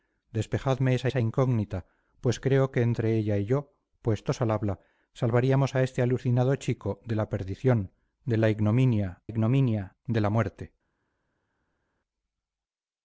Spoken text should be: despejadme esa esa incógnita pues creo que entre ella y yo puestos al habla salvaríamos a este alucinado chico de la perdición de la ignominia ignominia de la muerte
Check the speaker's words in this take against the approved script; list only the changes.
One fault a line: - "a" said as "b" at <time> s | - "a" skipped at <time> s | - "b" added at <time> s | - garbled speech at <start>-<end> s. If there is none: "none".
none